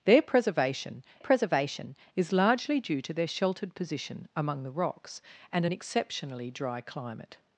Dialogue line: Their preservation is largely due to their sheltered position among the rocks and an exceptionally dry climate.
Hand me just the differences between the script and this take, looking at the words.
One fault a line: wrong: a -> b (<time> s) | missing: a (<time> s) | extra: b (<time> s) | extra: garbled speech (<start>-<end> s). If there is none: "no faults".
extra: preservation (1.2 s)